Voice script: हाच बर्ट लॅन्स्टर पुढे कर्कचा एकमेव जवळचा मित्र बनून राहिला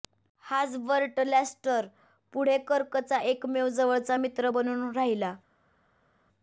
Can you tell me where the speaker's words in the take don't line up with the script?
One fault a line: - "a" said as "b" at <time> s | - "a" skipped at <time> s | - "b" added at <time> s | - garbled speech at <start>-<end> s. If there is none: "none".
none